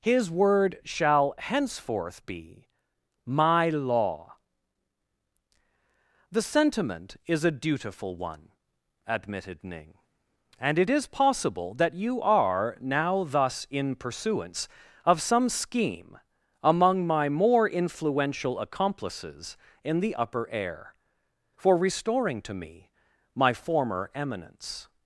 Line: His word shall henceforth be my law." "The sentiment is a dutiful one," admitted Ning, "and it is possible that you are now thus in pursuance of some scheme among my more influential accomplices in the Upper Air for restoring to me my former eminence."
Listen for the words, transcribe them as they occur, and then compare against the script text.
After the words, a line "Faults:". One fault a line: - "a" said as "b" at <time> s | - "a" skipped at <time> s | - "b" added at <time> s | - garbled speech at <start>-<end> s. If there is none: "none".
His word shall henceforth be my law." "The sentiment is a dutiful one," admitted Ning, "and it is possible that you are now thus in pursuance of some scheme among my more influential accomplices in the Upper Air for restoring to me my former eminence."
Faults:
none